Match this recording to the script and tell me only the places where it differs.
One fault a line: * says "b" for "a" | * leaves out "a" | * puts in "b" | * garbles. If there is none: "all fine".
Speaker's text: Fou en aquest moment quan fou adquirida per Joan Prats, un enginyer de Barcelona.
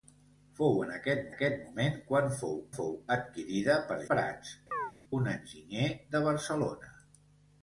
* puts in "aquest"
* puts in "fou"
* leaves out "Joan"